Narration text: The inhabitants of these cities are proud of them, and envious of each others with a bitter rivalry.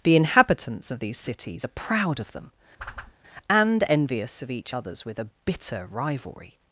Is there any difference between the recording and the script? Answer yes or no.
no